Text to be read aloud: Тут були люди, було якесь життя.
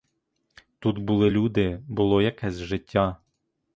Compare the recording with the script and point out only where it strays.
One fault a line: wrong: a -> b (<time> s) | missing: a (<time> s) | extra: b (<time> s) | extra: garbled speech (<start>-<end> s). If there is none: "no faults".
no faults